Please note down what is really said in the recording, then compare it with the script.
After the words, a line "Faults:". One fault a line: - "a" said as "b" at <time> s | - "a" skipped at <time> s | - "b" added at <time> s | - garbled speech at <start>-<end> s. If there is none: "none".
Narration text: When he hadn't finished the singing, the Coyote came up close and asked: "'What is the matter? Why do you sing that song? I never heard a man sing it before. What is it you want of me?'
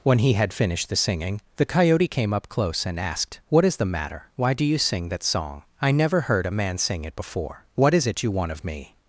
When he had finished the singing, the Coyote came up close and asked: "'What is the matter? Why do you sing that song? I never heard a man sing it before. What is it you want of me?'
Faults:
- "hadn't" said as "had" at 0.3 s